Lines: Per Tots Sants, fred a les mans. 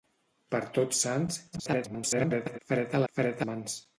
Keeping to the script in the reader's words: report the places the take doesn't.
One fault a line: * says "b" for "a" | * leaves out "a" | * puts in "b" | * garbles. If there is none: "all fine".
* garbles
* says "fred" for "les"